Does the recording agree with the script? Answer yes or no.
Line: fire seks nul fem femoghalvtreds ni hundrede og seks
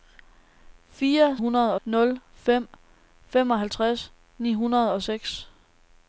no